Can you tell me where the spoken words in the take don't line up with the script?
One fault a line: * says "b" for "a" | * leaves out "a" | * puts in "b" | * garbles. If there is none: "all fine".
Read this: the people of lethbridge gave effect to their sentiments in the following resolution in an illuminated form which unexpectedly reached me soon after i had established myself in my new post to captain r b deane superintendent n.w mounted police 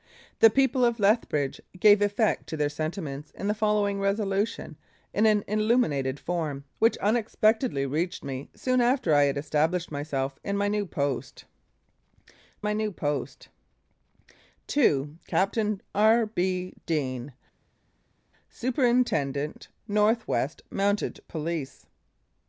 * puts in "my new post"